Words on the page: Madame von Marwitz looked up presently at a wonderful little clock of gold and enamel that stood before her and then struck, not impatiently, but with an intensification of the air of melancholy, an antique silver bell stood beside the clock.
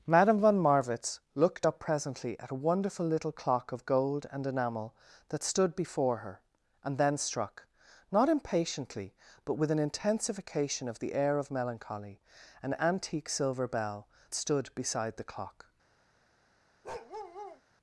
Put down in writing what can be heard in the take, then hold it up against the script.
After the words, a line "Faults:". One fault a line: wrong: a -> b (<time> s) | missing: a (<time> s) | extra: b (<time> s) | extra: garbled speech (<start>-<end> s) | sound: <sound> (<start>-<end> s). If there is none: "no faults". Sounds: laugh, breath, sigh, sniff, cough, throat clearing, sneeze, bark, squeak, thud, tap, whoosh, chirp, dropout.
Madame von Marwitz looked up presently at a wonderful little clock of gold and enamel that stood before her and then struck, not impatiently, but with an intensification of the air of melancholy, an antique silver bell stood beside the clock.
Faults:
sound: bark (16.8-17.6 s)